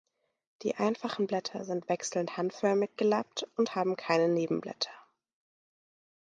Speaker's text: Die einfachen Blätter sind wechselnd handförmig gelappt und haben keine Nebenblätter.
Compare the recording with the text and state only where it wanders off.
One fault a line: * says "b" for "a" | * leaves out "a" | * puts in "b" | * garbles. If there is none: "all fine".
all fine